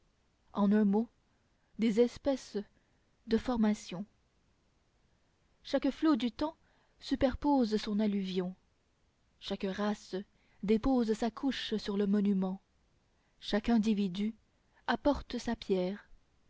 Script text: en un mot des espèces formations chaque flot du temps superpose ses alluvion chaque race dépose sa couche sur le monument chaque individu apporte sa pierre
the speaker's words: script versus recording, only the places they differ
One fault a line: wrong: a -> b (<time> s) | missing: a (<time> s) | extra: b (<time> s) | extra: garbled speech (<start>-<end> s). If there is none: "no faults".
extra: de (3.3 s)
wrong: ses -> son (7.8 s)